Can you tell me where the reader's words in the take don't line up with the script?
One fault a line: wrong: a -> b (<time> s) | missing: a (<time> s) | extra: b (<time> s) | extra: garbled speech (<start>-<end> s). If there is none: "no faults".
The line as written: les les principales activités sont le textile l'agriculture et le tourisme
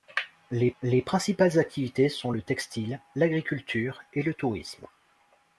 no faults